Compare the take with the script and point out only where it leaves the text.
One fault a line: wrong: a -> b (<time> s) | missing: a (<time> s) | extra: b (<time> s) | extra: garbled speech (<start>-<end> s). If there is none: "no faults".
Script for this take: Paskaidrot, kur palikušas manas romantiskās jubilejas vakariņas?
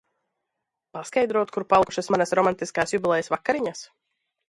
no faults